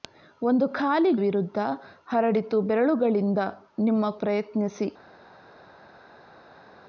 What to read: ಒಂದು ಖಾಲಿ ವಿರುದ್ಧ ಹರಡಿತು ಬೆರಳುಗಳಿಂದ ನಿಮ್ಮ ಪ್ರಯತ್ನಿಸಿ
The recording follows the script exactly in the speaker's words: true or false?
true